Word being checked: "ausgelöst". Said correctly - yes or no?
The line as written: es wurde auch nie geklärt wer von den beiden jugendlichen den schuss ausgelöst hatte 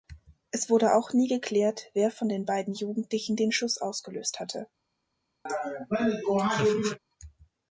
yes